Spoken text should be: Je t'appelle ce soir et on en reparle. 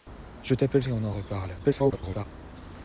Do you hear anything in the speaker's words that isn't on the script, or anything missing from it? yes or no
yes